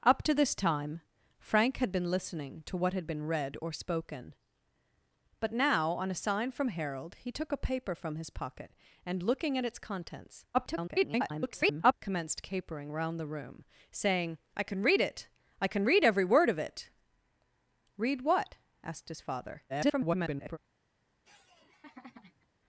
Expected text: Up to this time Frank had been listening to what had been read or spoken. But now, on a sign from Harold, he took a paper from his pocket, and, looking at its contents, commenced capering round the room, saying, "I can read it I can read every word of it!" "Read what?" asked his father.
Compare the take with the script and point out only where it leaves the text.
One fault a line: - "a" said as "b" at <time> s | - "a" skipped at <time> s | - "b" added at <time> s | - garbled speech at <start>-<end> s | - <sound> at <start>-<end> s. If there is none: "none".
- garbled speech at 10.5-11.9 s
- garbled speech at 19.7-20.6 s
- laugh at 21.2-22.5 s